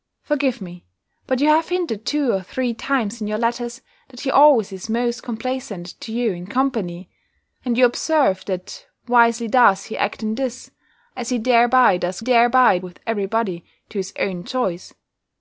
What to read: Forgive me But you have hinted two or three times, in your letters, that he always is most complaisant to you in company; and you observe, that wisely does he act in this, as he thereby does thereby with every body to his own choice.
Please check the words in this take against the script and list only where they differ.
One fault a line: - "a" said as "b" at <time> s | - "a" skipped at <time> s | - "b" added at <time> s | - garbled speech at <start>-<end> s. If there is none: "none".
none